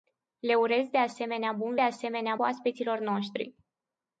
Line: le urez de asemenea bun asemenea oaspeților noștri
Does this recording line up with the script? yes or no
yes